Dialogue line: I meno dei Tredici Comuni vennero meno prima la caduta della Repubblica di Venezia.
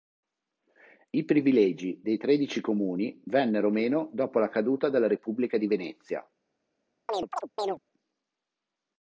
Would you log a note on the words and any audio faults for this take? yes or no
yes